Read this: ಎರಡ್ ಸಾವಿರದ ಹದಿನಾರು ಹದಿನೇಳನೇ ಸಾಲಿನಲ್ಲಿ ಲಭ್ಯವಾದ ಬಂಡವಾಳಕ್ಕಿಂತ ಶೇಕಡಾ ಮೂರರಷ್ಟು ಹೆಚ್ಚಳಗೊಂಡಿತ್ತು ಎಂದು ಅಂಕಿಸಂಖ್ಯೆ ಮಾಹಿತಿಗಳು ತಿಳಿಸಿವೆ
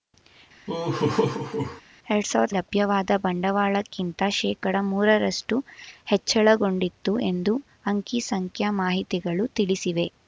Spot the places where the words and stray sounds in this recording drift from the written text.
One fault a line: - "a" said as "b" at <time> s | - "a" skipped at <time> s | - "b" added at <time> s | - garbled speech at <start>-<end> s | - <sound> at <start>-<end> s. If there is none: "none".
- laugh at 0.7-1.8 s
- "ಹದಿನಾರು ಹದಿನೇಳನೇ ಸಾಲಿನಲ್ಲಿ" skipped at 2.5 s